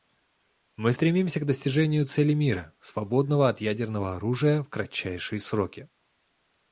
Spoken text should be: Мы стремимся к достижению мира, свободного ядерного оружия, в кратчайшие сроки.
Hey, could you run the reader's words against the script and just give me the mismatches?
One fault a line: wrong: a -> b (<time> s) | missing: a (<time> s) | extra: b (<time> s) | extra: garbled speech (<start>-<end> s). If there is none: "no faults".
extra: цели (2.0 s)
extra: от (3.5 s)